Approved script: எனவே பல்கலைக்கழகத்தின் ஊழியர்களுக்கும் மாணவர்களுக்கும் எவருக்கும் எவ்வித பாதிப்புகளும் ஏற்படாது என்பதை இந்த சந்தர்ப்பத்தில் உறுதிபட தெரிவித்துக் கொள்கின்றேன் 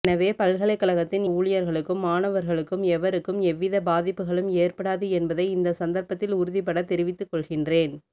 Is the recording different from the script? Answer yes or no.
no